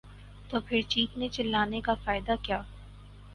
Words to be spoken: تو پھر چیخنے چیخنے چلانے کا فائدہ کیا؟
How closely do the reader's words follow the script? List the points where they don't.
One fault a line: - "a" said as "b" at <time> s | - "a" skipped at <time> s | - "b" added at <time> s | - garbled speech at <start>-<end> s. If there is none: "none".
- "چیخنے" skipped at 1.3 s